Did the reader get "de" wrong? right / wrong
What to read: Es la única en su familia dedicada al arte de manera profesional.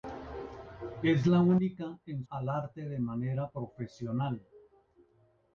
right